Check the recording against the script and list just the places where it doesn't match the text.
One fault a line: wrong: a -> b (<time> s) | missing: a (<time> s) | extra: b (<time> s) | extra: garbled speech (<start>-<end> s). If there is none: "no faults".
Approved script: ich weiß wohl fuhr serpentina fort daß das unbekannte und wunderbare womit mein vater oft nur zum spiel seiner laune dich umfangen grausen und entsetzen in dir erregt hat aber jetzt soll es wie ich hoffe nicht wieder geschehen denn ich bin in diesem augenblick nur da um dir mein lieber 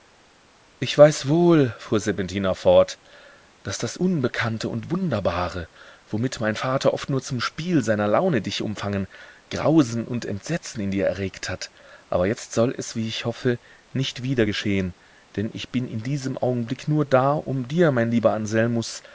no faults